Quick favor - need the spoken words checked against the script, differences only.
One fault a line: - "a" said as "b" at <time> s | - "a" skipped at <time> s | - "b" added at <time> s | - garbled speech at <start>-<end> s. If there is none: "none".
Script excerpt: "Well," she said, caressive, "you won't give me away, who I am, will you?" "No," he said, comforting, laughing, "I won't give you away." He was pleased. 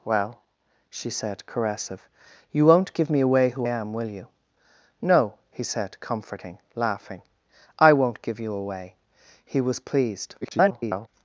- "I" skipped at 3.7 s
- garbled speech at 10.4-11.1 s